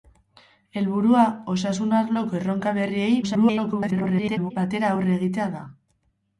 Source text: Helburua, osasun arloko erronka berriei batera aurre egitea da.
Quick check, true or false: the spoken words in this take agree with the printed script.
false